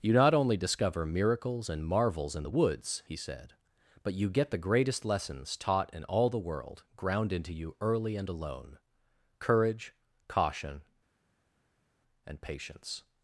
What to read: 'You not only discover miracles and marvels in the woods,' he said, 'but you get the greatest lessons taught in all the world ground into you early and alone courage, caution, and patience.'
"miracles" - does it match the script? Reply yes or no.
yes